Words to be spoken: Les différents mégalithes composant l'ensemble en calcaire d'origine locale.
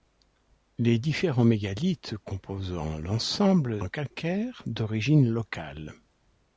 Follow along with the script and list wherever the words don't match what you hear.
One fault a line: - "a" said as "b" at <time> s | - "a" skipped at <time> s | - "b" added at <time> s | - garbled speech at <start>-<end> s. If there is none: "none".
none